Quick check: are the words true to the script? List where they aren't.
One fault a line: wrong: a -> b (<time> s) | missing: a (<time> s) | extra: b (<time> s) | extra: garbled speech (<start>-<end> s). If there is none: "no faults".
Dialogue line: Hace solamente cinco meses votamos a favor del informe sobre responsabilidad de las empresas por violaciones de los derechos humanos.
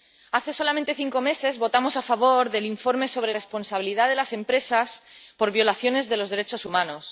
no faults